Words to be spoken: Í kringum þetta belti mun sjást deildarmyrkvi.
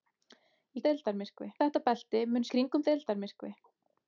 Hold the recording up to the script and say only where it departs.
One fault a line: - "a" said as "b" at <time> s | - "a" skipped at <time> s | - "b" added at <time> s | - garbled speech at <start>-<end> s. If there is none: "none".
- "kringum" said as "deildarmyrkvi" at 0.9 s
- "sjást" said as "kringum" at 2.5 s